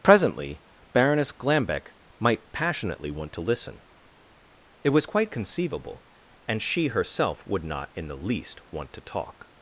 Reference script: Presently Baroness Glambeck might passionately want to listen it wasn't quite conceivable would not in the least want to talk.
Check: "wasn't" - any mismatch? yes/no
yes